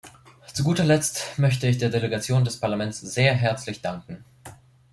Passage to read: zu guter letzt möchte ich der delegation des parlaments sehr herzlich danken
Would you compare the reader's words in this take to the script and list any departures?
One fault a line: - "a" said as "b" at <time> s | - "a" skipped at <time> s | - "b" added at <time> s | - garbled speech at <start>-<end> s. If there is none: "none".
none